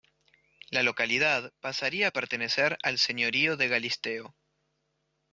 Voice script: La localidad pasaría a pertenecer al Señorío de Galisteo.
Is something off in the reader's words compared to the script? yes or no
no